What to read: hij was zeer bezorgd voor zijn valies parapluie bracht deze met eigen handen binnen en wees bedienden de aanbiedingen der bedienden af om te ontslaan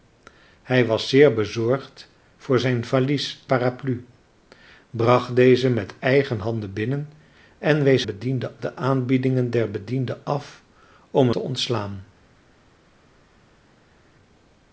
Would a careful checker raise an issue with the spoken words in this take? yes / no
no